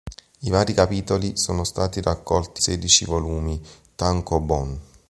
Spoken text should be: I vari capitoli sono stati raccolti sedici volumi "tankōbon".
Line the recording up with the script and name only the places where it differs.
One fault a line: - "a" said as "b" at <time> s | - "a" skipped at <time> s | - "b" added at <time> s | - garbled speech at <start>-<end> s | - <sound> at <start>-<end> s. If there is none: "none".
none